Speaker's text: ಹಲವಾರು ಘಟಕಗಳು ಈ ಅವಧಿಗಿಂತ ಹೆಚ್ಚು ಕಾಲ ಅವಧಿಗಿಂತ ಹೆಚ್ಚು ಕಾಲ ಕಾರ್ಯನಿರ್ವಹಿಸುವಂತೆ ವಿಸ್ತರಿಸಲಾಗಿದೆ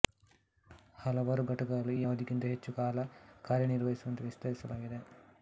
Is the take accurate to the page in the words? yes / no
no